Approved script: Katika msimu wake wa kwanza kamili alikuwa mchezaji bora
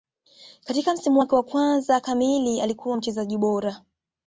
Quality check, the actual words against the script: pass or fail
pass